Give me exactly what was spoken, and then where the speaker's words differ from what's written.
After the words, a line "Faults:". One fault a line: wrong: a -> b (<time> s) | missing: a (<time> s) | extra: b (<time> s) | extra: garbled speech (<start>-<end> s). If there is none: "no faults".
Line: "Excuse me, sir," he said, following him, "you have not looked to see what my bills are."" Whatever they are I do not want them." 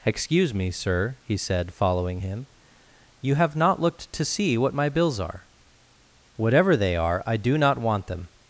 "Excuse me, sir," he said, following him, "you have not looked to see what my bills are."" Whatever they are I do not want them."
Faults:
no faults